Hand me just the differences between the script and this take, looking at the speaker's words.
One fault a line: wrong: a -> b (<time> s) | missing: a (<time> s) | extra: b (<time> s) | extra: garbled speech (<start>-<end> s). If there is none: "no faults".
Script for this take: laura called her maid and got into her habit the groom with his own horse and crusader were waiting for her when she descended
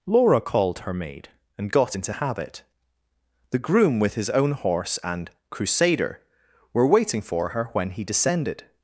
missing: her (2.1 s)
wrong: she -> he (7.9 s)